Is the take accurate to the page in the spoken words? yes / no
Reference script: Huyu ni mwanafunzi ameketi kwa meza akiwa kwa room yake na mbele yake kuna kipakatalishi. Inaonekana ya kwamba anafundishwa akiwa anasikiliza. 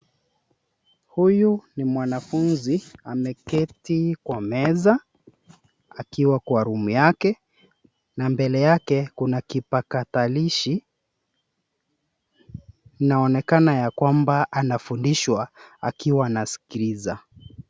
yes